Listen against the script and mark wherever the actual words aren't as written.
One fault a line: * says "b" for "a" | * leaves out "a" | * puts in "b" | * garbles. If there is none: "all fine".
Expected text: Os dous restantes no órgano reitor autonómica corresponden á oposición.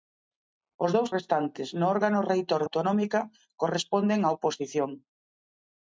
all fine